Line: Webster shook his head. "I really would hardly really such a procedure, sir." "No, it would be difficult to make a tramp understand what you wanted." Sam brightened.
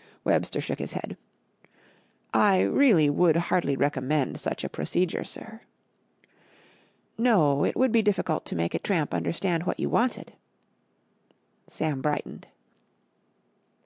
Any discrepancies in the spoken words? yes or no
yes